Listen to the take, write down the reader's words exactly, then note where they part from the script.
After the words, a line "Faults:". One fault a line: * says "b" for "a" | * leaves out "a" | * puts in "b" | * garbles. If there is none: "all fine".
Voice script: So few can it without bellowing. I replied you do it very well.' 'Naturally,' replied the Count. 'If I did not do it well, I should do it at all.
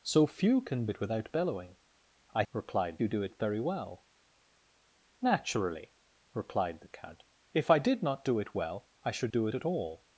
So few can it without bellowing. I replied you do it very well.' 'Naturally,' replied the Count. 'If I did not do it well, I should do it at all.
Faults:
all fine